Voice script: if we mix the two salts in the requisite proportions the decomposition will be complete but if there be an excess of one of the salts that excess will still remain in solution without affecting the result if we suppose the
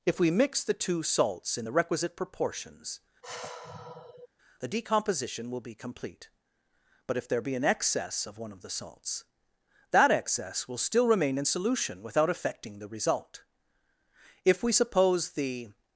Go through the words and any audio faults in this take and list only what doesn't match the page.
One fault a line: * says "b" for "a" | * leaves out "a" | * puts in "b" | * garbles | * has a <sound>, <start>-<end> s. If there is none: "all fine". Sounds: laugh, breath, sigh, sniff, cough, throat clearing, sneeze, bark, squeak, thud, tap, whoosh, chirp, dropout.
* has a sigh, 3.2-4.3 s